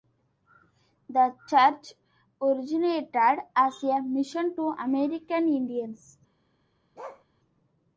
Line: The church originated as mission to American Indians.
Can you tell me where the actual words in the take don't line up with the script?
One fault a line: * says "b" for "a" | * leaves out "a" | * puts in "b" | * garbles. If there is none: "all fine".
* puts in "a"